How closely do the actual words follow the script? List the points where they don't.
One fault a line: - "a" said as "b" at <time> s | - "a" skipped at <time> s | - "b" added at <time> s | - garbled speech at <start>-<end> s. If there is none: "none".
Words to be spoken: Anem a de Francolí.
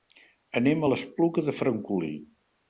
- "l'Espluga" added at 0.9 s